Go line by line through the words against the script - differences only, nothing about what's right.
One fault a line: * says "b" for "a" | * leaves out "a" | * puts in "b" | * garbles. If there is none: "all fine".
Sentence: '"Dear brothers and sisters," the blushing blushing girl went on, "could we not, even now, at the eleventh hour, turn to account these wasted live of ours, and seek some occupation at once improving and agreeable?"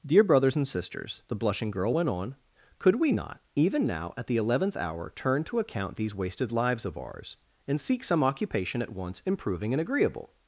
* leaves out "blushing"
* says "lives" for "live"